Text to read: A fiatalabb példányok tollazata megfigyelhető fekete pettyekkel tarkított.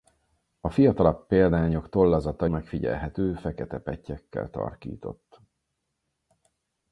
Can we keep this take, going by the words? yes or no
yes